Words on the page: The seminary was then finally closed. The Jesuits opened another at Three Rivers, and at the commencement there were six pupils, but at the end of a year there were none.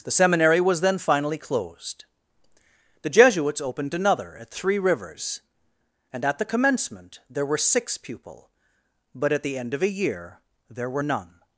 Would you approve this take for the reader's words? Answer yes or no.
no